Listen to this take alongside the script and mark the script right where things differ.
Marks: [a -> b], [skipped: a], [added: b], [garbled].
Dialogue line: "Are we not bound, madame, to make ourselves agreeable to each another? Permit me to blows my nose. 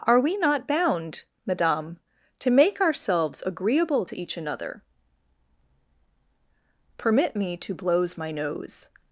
"Are we not bound, madame, to make ourselves agreeable to each another? Permit me to blows my nose.